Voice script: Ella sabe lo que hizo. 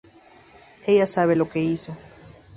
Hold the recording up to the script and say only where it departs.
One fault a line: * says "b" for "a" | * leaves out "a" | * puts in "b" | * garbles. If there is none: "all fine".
all fine